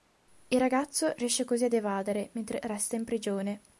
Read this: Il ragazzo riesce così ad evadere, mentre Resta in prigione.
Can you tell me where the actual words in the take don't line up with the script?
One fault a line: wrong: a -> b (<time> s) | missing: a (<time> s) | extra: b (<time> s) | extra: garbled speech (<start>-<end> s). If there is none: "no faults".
no faults